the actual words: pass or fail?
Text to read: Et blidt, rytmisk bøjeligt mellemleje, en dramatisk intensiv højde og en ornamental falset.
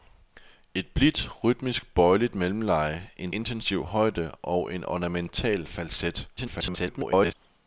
fail